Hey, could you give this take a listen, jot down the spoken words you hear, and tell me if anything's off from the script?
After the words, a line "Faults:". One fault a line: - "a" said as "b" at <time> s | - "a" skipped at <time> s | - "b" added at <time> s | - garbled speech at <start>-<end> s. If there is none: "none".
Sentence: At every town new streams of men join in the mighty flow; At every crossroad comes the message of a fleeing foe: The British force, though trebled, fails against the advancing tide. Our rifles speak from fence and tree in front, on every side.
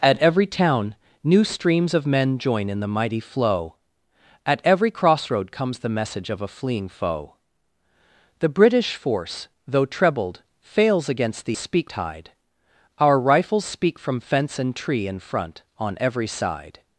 At every town new streams of men join in the mighty flow; At every crossroad comes the message of a fleeing foe: The British force, though trebled, fails against the speak tide. Our rifles speak from fence and tree in front, on every side.
Faults:
- "advancing" said as "speak" at 11.5 s